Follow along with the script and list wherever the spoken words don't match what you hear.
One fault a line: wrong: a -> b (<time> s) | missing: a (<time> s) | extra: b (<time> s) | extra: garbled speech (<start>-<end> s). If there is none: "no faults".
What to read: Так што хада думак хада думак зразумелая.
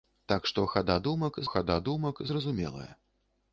no faults